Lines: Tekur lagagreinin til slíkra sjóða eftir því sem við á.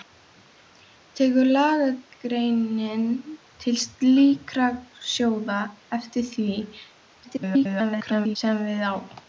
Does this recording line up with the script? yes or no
no